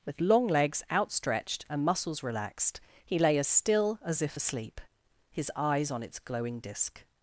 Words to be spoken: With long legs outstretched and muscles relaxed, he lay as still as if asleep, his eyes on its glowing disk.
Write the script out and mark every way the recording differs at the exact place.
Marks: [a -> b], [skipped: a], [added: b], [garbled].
With long legs outstretched and muscles relaxed, he lay as still as if asleep, his eyes on its glowing disk.